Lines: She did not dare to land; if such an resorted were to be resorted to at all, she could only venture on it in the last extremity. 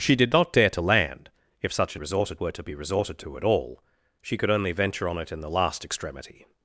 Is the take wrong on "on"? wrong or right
right